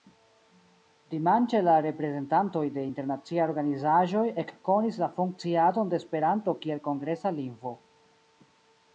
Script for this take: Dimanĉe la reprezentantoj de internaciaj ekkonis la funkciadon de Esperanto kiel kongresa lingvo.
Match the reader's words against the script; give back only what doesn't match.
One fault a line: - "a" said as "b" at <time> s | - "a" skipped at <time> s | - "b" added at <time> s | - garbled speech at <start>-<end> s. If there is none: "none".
- "organizaĵoj" added at 3.5 s